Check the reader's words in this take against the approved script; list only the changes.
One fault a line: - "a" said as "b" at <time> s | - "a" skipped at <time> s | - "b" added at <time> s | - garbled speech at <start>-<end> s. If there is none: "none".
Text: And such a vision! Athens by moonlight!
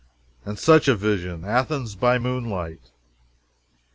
none